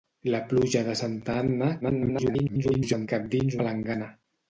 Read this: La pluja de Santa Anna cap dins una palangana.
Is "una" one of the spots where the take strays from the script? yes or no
yes